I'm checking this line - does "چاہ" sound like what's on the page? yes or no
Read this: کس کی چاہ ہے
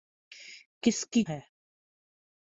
no